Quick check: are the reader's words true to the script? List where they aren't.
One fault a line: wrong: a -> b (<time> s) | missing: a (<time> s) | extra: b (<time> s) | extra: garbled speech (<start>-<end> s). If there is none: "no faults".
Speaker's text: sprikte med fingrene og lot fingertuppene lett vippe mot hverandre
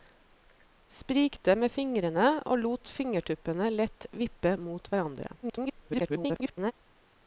extra: garbled speech (5.4-6.7 s)